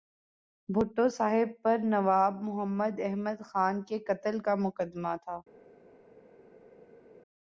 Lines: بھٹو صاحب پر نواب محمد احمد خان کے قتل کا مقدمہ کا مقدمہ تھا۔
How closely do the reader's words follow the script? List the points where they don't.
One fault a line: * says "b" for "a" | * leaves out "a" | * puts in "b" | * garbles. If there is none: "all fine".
* leaves out "کا مقدمہ"